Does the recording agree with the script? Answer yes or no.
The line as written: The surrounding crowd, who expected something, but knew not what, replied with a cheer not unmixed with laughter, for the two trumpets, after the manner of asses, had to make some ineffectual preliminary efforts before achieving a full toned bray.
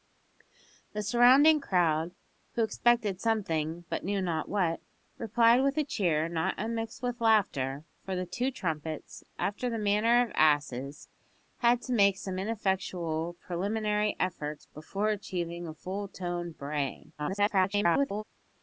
no